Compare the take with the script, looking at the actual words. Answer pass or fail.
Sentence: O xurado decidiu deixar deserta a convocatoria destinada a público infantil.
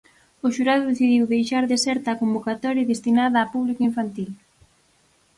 pass